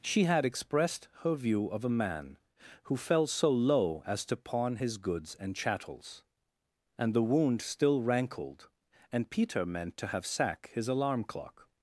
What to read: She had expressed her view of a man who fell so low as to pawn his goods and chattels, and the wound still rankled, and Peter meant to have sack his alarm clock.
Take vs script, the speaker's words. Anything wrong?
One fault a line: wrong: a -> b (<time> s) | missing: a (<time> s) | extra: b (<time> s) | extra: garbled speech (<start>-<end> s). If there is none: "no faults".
no faults